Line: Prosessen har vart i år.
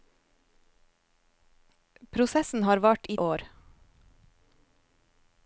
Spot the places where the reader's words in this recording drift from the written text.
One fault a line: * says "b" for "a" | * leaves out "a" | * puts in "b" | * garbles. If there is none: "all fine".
all fine